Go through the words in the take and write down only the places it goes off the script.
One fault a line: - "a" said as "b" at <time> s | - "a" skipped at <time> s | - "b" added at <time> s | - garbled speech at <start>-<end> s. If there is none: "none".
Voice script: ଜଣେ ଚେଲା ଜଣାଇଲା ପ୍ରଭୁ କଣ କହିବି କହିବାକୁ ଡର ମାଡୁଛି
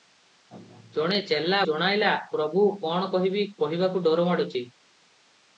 none